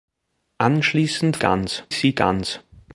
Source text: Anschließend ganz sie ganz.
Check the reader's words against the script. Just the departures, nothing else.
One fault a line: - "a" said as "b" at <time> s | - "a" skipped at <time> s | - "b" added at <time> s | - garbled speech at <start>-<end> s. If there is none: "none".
none